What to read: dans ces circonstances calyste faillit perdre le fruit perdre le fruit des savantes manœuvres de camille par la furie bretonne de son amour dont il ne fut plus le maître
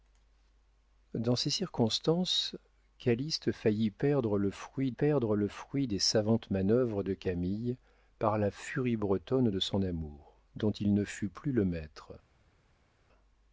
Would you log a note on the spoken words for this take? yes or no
no